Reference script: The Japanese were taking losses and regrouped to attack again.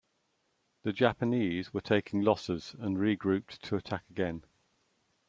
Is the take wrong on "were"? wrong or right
right